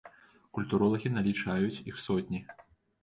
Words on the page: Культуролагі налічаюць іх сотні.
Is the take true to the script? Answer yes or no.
yes